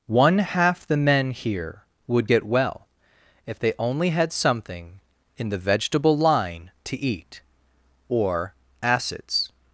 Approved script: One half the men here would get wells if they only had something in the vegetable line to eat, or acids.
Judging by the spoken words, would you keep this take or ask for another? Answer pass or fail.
fail